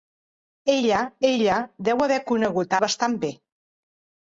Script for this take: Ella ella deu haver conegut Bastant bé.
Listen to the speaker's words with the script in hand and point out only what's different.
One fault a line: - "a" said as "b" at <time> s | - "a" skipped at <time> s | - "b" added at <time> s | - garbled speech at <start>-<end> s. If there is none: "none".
none